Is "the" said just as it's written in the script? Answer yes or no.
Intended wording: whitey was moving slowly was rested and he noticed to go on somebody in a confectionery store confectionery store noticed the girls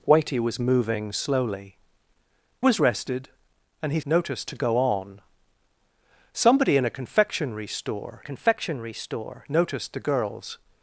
yes